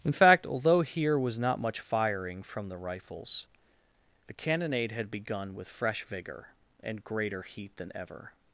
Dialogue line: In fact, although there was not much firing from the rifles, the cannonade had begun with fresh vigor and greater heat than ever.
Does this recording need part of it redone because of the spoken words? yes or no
yes